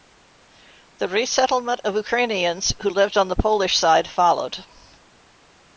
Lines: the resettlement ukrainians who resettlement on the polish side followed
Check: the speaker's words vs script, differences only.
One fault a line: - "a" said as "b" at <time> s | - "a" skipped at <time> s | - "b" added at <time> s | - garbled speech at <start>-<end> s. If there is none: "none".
- "of" added at 1.8 s
- "resettlement" said as "lived" at 2.9 s